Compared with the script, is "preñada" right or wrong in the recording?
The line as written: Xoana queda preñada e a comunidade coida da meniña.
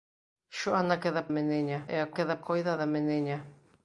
wrong